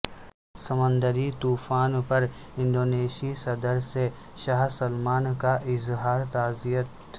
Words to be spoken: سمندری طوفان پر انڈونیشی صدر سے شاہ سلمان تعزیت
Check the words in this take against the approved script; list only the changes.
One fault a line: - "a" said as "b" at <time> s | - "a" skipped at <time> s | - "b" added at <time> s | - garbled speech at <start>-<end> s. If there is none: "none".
- "کا اظہار" added at 5.4 s